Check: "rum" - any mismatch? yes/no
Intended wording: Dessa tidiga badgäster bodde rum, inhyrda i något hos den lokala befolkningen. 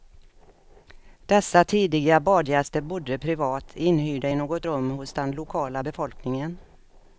yes